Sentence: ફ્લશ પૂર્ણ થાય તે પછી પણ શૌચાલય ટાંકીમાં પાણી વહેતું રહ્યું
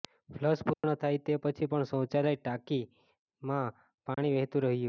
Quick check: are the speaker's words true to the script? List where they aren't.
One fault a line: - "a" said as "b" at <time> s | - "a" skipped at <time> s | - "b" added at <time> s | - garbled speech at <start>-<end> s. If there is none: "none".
none